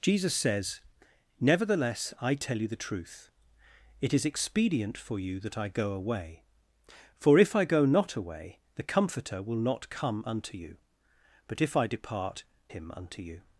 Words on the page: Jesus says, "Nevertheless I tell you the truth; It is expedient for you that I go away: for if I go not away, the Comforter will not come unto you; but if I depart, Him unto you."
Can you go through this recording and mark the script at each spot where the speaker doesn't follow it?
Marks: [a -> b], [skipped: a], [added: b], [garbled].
Jesus says, "Nevertheless I tell you the truth; It is expedient for you that I go away: for if I go not away, the Comforter will not come unto you; but if I depart, Him unto you."